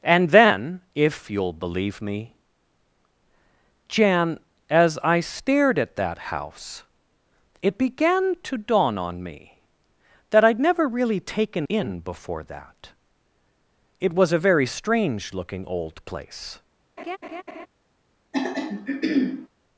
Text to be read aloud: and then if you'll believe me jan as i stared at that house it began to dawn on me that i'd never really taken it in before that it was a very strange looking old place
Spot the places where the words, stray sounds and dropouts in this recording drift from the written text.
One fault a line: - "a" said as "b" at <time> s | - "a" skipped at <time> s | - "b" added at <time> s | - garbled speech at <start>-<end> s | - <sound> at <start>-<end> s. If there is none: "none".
- "it" skipped at 11.7 s
- laugh at 17.0-17.7 s
- throat clearing at 18.3-19.5 s